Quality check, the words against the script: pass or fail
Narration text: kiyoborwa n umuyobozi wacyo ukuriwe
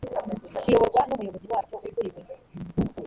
pass